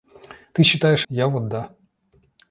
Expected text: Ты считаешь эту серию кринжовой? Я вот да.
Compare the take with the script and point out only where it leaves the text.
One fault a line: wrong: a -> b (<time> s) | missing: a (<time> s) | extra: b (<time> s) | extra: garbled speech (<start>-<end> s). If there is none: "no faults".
missing: эту серию кринжовой (1.1 s)